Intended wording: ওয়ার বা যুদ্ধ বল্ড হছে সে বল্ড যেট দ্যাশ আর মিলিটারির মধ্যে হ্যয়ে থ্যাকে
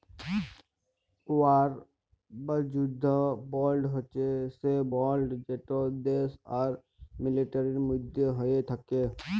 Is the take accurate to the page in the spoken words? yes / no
yes